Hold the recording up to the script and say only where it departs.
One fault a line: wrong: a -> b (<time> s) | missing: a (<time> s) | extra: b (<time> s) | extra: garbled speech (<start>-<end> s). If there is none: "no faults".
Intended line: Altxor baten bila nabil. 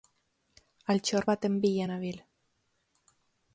no faults